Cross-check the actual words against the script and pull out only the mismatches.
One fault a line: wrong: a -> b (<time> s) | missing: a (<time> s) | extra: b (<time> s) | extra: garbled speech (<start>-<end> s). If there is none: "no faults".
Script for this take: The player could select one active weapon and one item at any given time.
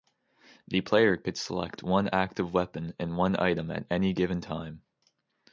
no faults